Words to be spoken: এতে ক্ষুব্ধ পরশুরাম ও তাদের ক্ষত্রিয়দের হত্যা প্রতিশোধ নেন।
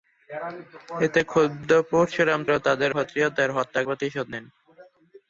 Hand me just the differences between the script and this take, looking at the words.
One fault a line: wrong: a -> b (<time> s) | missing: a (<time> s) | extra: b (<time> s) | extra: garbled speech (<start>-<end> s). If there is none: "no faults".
no faults